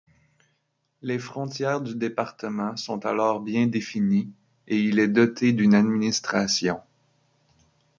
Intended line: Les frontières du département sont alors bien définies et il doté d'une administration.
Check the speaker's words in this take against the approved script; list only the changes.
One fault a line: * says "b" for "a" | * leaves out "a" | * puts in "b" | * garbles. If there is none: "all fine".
* puts in "est"